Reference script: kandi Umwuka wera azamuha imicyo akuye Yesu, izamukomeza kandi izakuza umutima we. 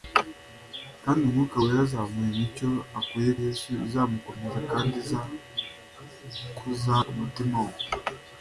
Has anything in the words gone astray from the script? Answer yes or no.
no